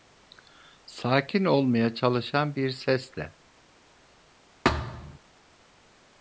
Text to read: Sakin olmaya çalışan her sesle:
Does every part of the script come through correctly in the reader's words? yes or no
no